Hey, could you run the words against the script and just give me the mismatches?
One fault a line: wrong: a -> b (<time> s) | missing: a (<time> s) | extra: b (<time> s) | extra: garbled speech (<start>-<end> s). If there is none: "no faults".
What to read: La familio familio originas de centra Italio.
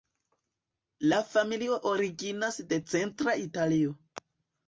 missing: familio (1.8 s)